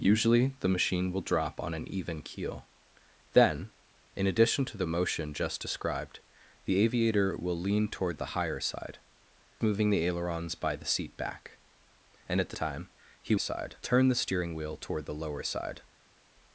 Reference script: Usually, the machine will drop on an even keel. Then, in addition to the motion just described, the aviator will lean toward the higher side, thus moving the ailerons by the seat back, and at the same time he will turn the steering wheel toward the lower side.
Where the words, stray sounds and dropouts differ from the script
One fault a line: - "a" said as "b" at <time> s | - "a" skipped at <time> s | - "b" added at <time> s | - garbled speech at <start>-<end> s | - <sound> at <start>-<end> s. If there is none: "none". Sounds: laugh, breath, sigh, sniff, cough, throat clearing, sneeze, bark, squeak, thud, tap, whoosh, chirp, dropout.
- "thus" skipped at 9.0 s
- "same" skipped at 12.6 s
- "will" said as "side" at 13.4 s